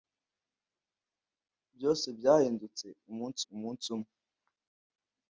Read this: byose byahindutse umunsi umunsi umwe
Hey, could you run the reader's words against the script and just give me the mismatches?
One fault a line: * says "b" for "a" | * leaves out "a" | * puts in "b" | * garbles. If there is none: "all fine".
all fine